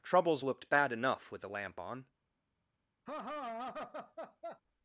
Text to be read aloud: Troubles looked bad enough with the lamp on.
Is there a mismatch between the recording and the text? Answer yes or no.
no